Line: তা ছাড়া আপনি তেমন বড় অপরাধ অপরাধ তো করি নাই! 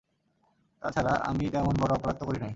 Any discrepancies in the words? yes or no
yes